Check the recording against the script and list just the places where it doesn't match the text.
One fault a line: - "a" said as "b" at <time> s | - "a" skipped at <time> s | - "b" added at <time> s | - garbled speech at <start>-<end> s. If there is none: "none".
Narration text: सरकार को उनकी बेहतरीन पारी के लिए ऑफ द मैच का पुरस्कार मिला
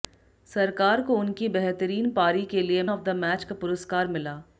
none